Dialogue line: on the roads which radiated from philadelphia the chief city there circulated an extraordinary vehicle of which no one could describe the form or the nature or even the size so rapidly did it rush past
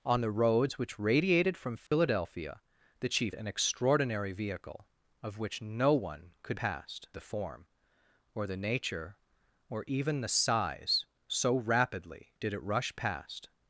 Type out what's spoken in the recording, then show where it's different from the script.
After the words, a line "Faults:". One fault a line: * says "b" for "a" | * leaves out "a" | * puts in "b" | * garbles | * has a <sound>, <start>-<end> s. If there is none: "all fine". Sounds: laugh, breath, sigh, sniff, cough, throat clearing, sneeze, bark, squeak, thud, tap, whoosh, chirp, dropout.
on the roads which radiated from philadelphia the chief an extraordinary vehicle of which no one could past the form or the nature or even the size so rapidly did it rush past
Faults:
* has a dropout, 1.9-1.9 s
* leaves out "city there circulated"
* says "past" for "describe"